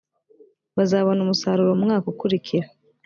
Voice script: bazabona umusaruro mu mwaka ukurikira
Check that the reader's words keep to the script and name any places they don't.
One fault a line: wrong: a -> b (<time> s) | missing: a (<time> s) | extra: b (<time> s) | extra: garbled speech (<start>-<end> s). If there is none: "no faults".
no faults